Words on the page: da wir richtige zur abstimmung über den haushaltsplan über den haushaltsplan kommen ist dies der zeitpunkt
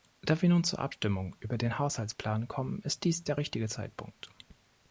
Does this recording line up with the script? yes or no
no